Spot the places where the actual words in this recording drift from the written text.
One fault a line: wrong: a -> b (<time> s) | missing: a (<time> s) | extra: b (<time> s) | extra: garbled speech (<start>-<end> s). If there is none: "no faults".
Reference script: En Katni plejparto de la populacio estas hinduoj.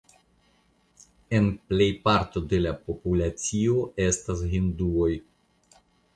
missing: Katni (1.5 s)